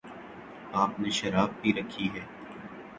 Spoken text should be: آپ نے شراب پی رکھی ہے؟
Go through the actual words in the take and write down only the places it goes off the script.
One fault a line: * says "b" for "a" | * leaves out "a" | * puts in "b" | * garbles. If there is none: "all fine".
all fine